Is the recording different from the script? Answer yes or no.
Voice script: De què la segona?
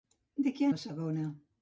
no